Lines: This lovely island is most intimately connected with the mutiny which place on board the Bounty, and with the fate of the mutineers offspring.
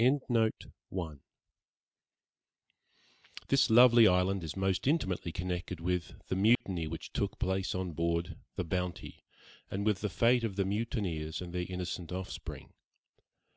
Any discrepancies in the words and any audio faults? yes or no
yes